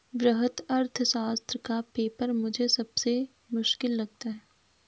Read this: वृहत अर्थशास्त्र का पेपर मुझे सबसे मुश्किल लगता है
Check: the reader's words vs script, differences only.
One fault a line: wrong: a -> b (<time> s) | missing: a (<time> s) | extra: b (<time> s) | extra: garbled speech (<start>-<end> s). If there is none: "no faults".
no faults